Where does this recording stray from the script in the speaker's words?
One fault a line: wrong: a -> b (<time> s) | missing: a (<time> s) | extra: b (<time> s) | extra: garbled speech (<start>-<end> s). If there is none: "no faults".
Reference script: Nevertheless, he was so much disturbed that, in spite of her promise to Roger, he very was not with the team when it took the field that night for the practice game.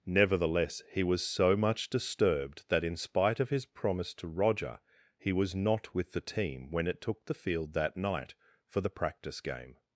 wrong: her -> his (3.5 s)
missing: very (5.3 s)